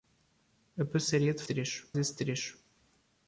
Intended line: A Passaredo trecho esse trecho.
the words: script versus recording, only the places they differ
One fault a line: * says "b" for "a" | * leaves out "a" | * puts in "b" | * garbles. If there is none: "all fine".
all fine